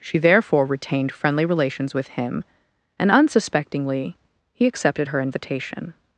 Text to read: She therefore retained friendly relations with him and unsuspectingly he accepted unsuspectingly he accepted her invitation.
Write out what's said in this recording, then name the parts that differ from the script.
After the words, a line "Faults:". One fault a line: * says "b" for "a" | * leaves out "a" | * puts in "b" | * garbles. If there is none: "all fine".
She therefore retained friendly relations with him and unsuspectingly he accepted her invitation.
Faults:
* leaves out "unsuspectingly he accepted"